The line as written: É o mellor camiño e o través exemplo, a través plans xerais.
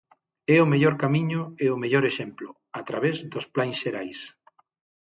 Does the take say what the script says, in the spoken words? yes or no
no